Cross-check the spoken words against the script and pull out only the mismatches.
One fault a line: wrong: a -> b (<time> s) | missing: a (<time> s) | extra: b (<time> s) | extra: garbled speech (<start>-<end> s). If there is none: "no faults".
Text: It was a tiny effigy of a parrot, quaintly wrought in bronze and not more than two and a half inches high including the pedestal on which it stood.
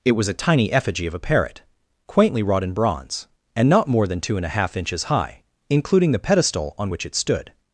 no faults